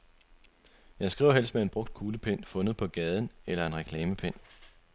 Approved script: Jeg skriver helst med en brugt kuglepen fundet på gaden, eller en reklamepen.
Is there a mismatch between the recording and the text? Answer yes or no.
no